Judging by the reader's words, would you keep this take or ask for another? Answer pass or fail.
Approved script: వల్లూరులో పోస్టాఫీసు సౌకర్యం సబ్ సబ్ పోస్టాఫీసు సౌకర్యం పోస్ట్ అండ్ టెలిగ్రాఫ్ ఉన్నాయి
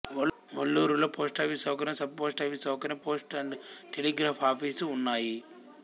fail